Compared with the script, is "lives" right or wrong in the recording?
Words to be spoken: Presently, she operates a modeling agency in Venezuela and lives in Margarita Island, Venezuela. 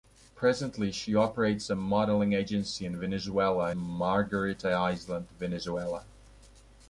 wrong